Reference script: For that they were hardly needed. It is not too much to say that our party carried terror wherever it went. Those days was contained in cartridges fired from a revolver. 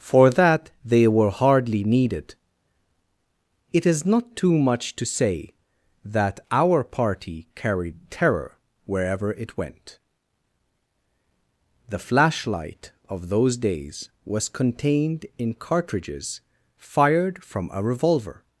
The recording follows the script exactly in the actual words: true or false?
false